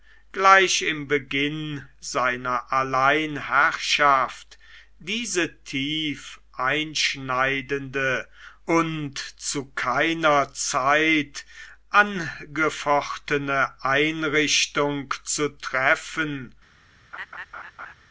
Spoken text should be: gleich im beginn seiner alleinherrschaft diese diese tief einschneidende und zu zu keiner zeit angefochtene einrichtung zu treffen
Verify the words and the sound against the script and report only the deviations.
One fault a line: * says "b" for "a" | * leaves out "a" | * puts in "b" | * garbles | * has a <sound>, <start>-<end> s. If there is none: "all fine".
* leaves out "diese"
* leaves out "zu"
* has a laugh, 17.1-17.9 s